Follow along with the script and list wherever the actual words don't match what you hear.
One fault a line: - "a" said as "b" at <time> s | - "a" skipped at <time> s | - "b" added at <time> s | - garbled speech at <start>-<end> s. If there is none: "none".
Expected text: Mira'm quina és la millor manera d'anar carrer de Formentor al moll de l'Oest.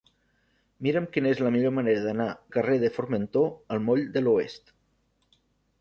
none